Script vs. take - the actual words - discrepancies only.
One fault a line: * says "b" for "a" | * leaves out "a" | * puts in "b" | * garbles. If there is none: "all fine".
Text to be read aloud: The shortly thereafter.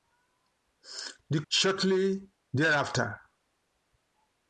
all fine